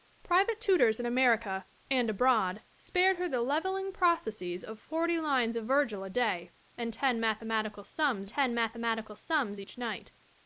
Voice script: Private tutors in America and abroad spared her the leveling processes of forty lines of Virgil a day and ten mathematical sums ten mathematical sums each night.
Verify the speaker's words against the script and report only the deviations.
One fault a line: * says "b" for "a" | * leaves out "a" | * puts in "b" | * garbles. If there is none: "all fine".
all fine